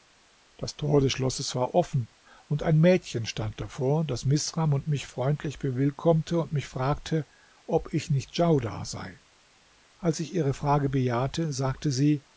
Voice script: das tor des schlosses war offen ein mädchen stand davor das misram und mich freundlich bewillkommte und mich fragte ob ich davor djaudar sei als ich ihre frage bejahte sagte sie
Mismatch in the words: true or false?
true